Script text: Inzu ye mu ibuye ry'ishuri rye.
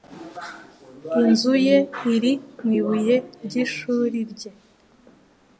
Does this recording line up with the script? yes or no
no